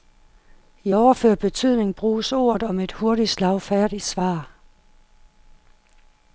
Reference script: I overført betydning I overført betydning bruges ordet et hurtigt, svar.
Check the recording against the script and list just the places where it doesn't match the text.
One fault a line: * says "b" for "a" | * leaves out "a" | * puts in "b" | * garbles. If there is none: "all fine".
* leaves out "I overført betydning"
* puts in "om"
* puts in "slagfærdigt"